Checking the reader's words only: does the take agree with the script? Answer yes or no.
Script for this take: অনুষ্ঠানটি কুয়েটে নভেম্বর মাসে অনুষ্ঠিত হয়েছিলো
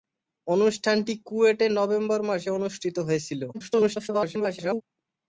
no